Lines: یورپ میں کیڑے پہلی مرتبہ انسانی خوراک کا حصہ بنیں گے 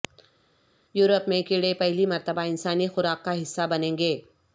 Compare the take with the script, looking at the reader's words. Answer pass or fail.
pass